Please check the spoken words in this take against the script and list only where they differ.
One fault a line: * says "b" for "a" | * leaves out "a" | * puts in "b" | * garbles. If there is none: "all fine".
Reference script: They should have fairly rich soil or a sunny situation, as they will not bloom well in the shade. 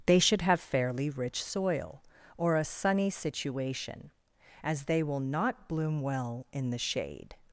all fine